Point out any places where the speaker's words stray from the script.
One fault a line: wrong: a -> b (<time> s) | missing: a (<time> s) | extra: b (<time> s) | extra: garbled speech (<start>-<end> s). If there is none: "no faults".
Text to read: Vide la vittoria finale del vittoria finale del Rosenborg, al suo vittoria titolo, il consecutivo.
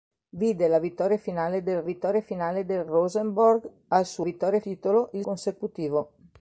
no faults